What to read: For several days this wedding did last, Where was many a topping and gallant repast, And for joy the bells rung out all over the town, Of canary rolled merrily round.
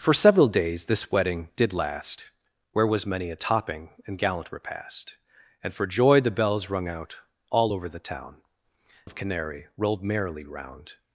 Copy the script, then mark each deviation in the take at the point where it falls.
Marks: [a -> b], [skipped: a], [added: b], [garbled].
For several days this wedding did last, Where was many a topping and gallant repast, And for joy the bells rung out all over the town, Of canary rolled merrily round.